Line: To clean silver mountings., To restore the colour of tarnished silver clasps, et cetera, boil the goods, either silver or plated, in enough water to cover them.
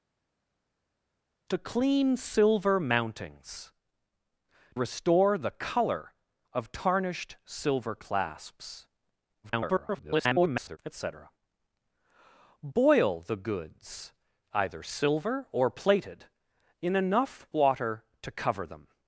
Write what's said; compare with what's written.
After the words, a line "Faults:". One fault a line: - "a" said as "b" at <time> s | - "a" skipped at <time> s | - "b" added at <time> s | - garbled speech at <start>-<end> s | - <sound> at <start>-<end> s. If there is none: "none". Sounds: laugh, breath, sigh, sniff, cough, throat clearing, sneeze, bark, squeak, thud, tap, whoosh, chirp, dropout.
To clean silver mountings., Restore the colour of tarnished silver clasps, [garbled] et cetera, boil the goods, either silver or plated, in enough water to cover them.
Faults:
- "To" skipped at 3.7 s
- garbled speech at 9.4-10.8 s